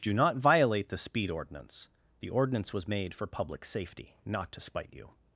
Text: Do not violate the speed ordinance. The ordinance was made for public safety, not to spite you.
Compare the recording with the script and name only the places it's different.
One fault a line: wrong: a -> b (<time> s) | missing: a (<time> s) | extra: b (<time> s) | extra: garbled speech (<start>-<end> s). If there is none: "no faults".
no faults